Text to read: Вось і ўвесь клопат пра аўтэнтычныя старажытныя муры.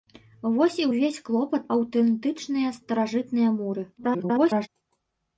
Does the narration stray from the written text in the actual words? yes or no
yes